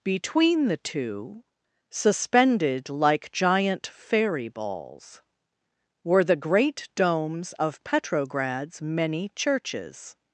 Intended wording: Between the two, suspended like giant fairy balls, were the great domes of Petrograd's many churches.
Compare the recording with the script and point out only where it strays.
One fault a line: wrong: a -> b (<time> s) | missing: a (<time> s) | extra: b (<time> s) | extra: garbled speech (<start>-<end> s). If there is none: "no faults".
no faults